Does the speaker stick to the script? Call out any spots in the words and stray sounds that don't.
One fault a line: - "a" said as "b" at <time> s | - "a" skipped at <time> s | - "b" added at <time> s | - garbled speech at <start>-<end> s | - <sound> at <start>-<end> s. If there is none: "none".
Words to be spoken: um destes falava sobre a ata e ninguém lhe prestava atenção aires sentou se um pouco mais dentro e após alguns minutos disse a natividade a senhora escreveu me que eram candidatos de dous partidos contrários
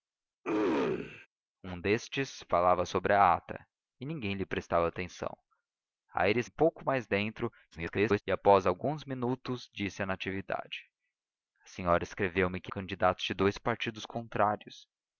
- throat clearing at 0.4-1.3 s
- "sentou se" skipped at 6.5 s
- garbled speech at 7.7-8.2 s
- "eram" skipped at 12.7 s